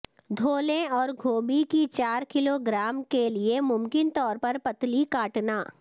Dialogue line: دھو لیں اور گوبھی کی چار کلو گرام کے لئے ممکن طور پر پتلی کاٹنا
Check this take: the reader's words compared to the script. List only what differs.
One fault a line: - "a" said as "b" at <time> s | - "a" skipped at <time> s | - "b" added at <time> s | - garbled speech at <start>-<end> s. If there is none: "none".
none